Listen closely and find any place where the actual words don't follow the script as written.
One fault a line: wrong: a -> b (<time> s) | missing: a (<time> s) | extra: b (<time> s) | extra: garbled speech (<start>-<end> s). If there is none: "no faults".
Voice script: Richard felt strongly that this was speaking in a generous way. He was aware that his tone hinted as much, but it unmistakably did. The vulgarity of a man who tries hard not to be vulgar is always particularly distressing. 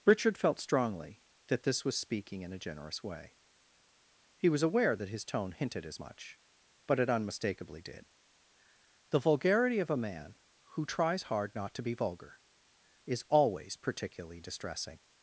no faults